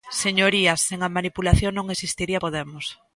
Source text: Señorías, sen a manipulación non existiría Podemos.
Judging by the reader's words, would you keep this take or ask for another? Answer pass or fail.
pass